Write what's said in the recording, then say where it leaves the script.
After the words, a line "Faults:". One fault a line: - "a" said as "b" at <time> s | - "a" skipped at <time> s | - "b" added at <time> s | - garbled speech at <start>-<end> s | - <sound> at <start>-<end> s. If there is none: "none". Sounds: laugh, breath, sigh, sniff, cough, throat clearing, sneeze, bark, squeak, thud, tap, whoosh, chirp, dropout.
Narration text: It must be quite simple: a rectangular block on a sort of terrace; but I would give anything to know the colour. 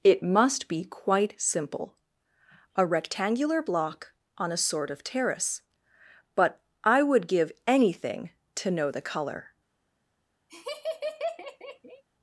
It must be quite simple: a rectangular block on a sort of terrace; but I would give anything to know the colour.
Faults:
- laugh at 10.5-12.0 s